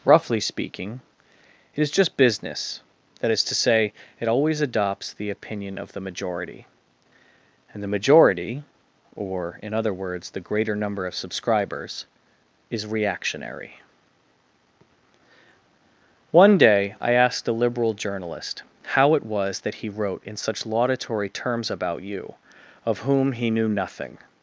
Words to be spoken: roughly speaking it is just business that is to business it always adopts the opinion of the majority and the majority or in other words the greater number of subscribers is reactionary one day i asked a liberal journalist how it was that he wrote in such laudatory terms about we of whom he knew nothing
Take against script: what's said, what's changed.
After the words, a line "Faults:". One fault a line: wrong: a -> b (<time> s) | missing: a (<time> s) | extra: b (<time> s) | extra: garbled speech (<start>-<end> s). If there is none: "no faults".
roughly speaking it is just business that is to say it always adopts the opinion of the majority and the majority or in other words the greater number of subscribers is reactionary one day i asked a liberal journalist how it was that he wrote in such laudatory terms about you of whom he knew nothing
Faults:
wrong: business -> say (3.5 s)
wrong: we -> you (22.0 s)